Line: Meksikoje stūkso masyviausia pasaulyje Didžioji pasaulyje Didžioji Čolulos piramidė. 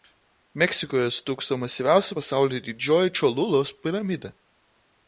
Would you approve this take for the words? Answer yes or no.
no